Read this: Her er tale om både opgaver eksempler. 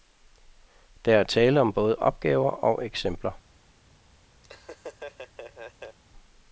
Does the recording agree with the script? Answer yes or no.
no